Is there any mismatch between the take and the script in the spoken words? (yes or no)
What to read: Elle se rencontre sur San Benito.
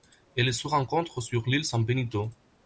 yes